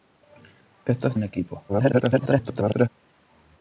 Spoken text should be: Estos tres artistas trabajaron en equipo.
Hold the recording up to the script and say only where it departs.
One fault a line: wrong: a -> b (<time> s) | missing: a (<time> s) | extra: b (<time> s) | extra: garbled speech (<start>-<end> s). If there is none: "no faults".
missing: tres artistas trabajaron (1.2 s)
extra: garbled speech (1.7-2.9 s)